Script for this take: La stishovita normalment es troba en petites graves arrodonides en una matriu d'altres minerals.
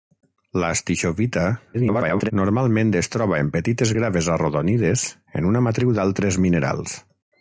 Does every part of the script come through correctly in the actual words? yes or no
no